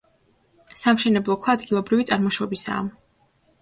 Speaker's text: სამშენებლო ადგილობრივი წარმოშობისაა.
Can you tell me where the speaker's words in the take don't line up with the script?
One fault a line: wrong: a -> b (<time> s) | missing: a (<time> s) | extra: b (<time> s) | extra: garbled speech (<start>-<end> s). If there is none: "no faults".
extra: ქვა (1.4 s)